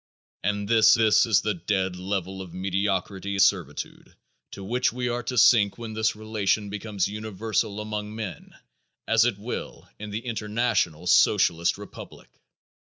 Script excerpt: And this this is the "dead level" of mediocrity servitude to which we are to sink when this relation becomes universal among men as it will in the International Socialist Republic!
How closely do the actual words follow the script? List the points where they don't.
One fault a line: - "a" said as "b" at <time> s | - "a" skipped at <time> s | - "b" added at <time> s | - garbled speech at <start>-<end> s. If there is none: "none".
none